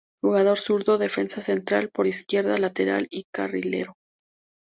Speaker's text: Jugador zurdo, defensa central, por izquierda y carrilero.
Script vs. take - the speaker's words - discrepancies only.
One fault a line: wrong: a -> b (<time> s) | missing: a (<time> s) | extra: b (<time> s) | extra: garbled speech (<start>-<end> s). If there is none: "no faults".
extra: lateral (2.6 s)